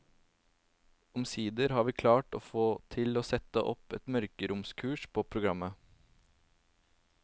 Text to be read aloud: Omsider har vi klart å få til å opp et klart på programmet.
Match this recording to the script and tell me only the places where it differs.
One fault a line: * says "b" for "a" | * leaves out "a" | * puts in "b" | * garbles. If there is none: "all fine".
* puts in "sette"
* says "mørkeromskurs" for "klart"